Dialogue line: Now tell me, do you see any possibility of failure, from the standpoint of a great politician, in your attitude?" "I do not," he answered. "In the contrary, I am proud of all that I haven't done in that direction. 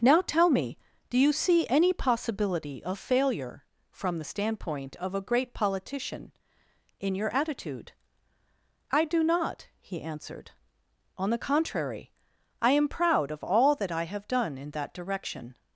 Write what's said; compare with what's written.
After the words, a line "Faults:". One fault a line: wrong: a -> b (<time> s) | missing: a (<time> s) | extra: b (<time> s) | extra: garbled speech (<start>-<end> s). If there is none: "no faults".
Now tell me, do you see any possibility of failure, from the standpoint of a great politician, in your attitude?" "I do not," he answered. "On the contrary, I am proud of all that I have done in that direction.
Faults:
wrong: In -> On (11.2 s)
wrong: haven't -> have (14.1 s)